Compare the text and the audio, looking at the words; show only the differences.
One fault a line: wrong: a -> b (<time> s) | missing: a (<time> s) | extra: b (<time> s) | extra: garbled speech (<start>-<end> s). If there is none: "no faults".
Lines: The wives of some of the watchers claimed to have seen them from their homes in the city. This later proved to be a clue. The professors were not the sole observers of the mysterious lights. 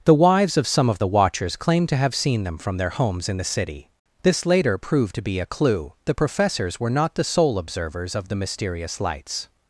no faults